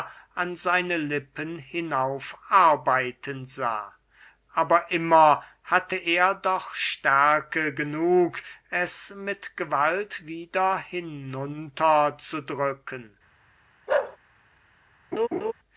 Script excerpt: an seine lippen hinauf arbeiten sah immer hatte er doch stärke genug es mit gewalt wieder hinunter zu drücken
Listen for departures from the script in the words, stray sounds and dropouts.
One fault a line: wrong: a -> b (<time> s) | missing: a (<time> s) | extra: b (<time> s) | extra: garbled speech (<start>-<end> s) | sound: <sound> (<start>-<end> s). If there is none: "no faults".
extra: aber (4.5 s)
sound: bark (13.9-14.2 s)
sound: laugh (15.1-15.5 s)